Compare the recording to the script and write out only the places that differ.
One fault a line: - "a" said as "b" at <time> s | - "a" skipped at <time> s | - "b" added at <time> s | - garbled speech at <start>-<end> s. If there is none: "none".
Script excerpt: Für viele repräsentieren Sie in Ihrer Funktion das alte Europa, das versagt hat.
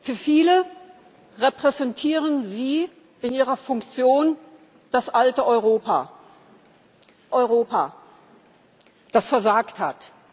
- "Europa" added at 7.3 s